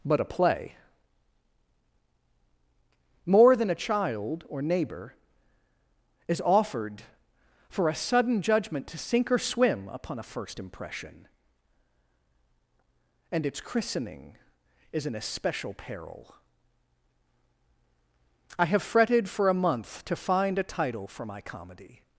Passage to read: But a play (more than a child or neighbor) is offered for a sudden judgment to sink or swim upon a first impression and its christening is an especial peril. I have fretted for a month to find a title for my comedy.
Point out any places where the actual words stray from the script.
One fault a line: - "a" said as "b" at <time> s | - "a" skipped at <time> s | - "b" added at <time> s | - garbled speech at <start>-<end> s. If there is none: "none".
none